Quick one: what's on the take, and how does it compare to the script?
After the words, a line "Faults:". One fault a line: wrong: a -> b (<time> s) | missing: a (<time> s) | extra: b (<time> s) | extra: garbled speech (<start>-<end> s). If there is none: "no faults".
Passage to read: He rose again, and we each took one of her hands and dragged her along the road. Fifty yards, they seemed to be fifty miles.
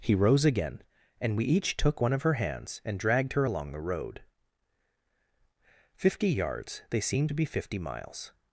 He rose again, and we each took one of her hands and dragged her along the road. Fifty yards, they seemed to be fifty miles.
Faults:
no faults